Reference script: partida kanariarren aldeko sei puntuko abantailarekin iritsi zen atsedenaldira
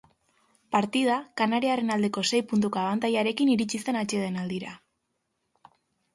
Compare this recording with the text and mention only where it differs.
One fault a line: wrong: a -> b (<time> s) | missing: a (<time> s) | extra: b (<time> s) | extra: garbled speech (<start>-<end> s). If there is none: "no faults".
no faults